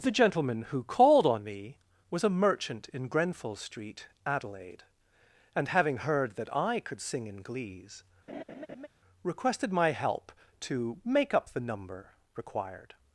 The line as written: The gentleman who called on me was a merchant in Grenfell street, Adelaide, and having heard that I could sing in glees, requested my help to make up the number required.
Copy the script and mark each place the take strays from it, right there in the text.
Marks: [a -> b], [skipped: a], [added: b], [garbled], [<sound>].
The gentleman who called on me was a merchant in Grenfell street, Adelaide, and having heard that I could sing in glees, [laugh] requested my help to make up the number required.